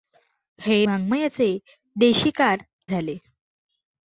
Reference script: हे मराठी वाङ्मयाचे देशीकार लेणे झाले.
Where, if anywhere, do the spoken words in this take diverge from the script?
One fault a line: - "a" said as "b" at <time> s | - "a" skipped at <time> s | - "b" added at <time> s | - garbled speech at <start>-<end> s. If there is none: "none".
- "मराठी" skipped at 0.8 s
- "लेणे" skipped at 2.6 s